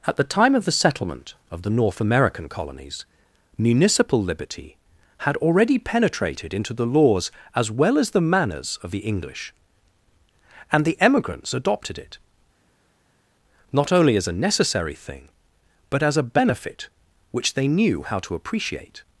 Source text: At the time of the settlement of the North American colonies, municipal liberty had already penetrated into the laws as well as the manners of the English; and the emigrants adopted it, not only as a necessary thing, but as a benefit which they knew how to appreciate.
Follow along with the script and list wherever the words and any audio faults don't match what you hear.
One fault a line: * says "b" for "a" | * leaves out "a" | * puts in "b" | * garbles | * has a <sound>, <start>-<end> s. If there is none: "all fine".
all fine